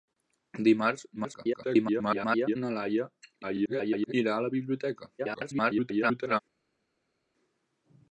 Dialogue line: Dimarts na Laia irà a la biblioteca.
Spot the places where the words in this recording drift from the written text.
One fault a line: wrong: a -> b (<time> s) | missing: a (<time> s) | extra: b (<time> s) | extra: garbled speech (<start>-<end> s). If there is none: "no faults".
extra: garbled speech (1.2-2.6 s)
extra: garbled speech (3.4-4.1 s)
extra: garbled speech (5.2-6.4 s)